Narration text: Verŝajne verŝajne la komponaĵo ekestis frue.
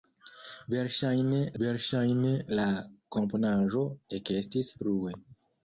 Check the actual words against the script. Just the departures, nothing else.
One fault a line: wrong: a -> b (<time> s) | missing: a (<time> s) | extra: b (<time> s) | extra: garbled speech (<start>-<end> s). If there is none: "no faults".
no faults